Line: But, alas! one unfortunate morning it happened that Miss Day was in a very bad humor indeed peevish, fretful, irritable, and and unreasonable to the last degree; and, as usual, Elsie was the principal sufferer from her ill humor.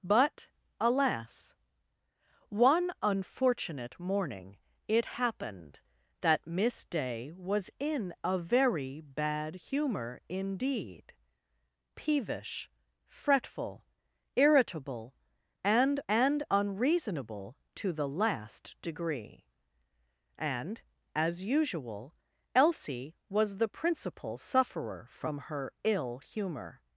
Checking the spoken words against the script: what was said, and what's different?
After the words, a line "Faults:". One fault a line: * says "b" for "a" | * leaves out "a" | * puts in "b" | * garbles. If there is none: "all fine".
But, alas! one unfortunate morning it happened that Miss Day was in a very bad humor indeed peevish, fretful, irritable, and and unreasonable to the last degree; and, as usual, Elsie was the principal sufferer from her ill humor.
Faults:
all fine